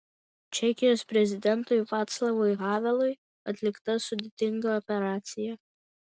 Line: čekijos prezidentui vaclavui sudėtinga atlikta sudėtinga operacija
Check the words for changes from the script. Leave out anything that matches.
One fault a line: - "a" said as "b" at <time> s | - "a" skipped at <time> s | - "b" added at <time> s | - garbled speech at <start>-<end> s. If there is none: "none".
- "sudėtinga" said as "havelui" at 2.6 s